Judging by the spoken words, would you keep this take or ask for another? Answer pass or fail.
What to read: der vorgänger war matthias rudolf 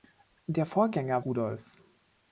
fail